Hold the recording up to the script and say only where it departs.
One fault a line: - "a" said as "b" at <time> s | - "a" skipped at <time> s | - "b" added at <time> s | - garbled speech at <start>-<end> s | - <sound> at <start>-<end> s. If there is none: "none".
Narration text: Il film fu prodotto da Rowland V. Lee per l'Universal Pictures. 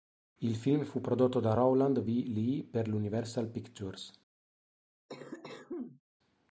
- cough at 5.1-6.0 s